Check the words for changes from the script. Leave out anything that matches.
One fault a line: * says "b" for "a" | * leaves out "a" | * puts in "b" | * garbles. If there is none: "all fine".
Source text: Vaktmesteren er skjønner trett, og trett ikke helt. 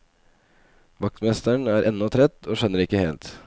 * says "ennå" for "skjønner"
* says "skjønner" for "trett"